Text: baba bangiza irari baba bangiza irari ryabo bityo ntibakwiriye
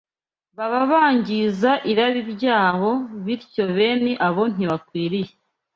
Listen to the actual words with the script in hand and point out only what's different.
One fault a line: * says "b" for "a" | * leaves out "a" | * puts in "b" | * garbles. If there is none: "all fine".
* says "ryabo bityo bene abo" for "baba bangiza irari ryabo bityo"